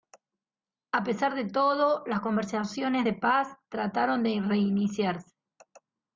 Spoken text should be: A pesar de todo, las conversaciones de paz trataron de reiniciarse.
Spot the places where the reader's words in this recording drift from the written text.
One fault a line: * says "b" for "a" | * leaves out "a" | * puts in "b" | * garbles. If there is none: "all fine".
all fine